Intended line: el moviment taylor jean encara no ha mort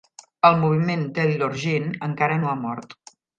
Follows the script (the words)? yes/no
yes